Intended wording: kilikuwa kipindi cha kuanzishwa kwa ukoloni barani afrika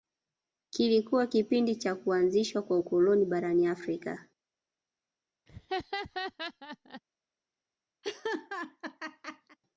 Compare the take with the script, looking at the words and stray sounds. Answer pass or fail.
fail